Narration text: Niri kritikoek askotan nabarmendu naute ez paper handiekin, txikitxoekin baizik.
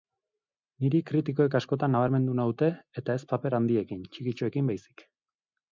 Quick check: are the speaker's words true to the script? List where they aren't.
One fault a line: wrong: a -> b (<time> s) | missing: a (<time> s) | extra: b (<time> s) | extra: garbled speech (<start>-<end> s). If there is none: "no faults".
extra: eta (3.0 s)